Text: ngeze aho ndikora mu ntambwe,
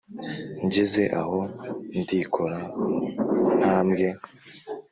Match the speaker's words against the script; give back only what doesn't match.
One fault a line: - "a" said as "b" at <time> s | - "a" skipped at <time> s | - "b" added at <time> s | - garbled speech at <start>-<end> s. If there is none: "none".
none